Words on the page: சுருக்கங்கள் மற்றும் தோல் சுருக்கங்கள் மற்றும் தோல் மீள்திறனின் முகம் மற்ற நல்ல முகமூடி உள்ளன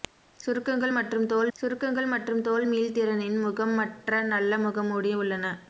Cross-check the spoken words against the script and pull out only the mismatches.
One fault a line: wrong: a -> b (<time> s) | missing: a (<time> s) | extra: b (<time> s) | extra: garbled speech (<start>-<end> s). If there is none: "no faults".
no faults